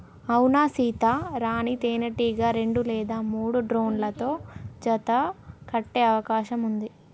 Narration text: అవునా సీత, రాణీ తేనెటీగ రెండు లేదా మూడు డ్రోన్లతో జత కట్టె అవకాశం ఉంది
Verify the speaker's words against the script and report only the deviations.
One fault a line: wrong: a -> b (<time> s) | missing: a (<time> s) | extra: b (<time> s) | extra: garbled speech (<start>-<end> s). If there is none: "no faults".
no faults